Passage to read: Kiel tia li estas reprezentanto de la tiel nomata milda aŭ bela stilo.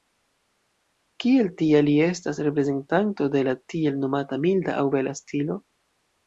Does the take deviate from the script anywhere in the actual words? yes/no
no